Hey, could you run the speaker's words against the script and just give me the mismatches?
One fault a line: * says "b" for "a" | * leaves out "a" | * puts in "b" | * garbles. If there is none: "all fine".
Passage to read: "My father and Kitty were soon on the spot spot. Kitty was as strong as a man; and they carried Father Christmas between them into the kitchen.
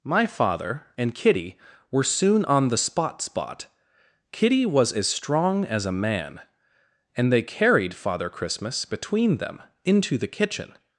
all fine